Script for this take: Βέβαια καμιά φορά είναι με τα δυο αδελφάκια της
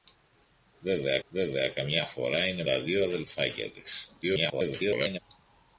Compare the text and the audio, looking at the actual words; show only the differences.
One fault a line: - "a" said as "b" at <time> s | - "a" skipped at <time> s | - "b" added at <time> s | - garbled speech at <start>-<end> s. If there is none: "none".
- "βέβαια" added at 1.3 s
- "με" skipped at 2.6 s
- garbled speech at 4.2-5.2 s